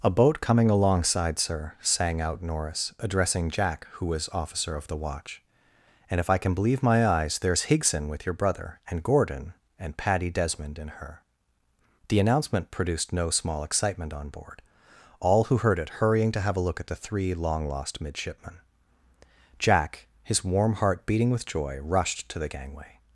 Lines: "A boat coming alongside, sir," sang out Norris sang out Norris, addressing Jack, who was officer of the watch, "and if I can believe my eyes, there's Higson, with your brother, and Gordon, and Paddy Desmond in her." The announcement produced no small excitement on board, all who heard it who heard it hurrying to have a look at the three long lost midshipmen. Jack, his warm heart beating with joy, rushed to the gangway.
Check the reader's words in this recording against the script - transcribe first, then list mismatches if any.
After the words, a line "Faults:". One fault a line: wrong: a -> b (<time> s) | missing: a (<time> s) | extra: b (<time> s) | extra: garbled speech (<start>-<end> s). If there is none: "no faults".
"A boat coming alongside, sir," sang out Norris, addressing Jack, who was officer of the watch, "and if I can believe my eyes, there's Higson, with your brother, and Gordon, and Paddy Desmond in her." The announcement produced no small excitement on board, all who heard it hurrying to have a look at the three long lost midshipmen. Jack, his warm heart beating with joy, rushed to the gangway.
Faults:
missing: sang out Norris (2.9 s)
missing: who heard it (16.0 s)